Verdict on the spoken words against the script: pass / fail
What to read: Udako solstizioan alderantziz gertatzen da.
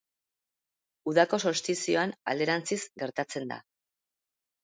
pass